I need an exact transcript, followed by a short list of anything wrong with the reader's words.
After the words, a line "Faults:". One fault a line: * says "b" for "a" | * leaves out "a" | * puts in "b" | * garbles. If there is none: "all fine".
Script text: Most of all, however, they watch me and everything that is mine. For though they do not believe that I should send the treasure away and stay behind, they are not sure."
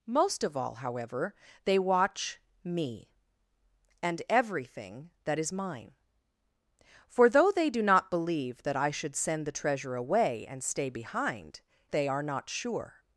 Most of all, however, they watch me and everything that is mine. For though they do not believe that I should send the treasure away and stay behind, they are not sure."
Faults:
all fine